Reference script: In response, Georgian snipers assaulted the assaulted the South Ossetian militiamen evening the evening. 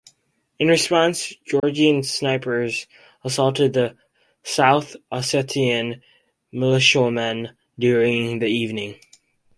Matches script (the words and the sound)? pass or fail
fail